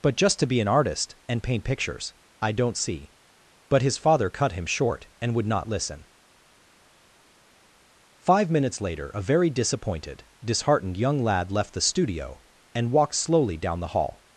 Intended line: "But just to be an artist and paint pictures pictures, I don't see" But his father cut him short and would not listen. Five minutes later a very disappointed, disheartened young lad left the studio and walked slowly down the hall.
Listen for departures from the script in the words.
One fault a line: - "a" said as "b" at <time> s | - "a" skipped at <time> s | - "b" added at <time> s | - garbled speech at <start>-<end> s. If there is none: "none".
- "pictures" skipped at 2.1 s